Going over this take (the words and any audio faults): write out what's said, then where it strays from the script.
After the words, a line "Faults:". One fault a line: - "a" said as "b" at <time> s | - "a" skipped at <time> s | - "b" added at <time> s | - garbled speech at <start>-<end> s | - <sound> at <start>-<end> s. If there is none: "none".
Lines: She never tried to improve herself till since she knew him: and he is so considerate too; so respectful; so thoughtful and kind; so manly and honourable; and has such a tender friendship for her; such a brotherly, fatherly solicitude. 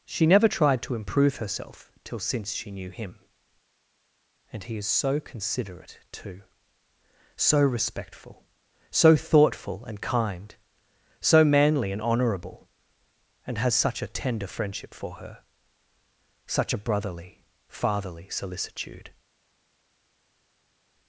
She never tried to improve herself till since she knew him: and he is so considerate too; so respectful; so thoughtful and kind; so manly and honourable; and has such a tender friendship for her; such a brotherly, fatherly solicitude.
Faults:
none